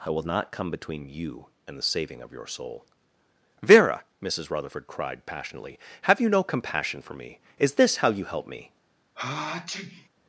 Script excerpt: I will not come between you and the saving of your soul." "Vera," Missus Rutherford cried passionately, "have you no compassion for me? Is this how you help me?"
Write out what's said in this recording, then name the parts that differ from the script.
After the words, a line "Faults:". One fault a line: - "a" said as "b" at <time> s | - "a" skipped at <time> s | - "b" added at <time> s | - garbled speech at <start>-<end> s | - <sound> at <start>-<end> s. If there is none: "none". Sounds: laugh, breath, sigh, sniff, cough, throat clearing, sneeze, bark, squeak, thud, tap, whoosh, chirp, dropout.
I will not come between you and the saving of your soul." "Vera," Missus Rutherford cried passionately, "have you no compassion for me? Is this how you help me?"
Faults:
- sneeze at 9.1-10.1 s